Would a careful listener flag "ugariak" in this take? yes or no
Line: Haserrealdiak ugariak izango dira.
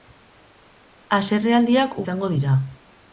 yes